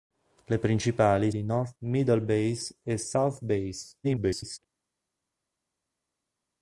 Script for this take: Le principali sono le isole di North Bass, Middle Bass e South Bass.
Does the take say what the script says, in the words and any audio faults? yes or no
no